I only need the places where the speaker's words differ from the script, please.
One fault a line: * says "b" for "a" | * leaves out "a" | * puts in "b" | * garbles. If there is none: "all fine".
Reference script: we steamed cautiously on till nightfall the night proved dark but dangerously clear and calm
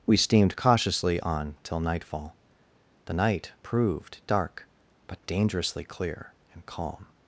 all fine